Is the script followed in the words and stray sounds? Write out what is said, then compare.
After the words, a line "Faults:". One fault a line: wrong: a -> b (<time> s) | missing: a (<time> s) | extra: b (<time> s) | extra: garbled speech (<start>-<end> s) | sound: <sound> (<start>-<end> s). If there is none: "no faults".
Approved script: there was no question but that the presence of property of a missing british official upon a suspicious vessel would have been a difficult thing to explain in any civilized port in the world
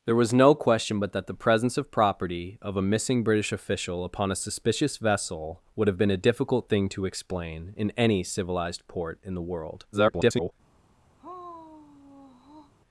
there was no question but that the presence of property of a missing british official upon a suspicious vessel would have been a difficult thing to explain in any civilized port in the world [garbled]
Faults:
extra: garbled speech (9.9-10.5 s)
sound: sigh (11.2-12.7 s)